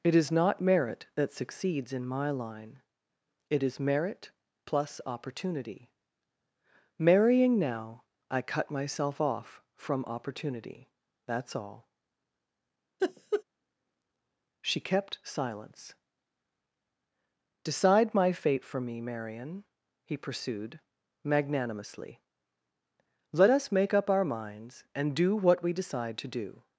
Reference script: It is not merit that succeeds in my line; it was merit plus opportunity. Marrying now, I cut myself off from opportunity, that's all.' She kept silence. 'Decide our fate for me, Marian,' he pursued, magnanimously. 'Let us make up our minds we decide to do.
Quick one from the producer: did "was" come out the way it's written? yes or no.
no